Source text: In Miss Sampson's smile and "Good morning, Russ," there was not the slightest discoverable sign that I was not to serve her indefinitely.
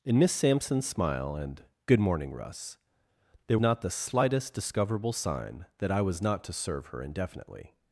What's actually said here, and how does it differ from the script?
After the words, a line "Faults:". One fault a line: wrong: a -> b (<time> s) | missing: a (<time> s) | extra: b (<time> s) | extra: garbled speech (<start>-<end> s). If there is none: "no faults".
In Miss Sampson's smile and "Good morning, Russ," there not the slightest discoverable sign that I was not to serve her indefinitely.
Faults:
missing: was (3.6 s)